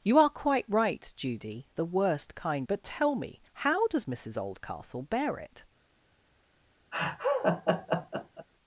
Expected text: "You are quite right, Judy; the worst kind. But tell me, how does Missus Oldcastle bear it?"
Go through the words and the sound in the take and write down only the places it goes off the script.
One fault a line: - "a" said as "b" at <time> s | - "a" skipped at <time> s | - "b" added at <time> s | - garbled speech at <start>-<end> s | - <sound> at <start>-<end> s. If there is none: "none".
- laugh at 6.9-8.5 s